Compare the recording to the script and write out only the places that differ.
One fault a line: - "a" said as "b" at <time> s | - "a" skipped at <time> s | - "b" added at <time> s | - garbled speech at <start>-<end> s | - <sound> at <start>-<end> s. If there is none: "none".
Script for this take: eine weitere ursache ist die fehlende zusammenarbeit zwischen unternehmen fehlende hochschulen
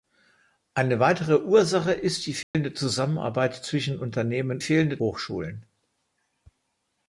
- dropout at 2.4-2.5 s